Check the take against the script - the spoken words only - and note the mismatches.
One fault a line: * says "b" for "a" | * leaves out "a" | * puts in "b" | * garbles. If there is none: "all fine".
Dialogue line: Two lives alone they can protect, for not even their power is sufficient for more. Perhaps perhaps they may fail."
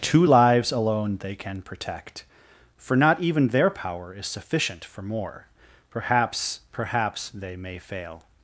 all fine